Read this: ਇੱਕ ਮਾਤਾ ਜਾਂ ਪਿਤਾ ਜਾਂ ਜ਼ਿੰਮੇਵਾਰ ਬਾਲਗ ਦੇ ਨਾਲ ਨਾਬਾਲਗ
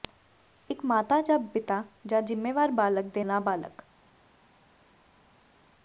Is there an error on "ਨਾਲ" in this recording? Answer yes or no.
yes